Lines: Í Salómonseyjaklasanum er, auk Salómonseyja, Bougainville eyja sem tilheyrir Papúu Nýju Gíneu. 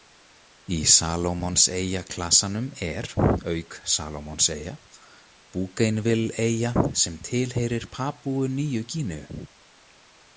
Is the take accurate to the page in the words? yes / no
yes